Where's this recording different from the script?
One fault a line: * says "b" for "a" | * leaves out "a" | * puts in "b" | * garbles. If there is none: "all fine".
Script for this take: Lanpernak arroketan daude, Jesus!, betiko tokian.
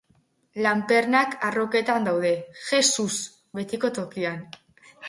all fine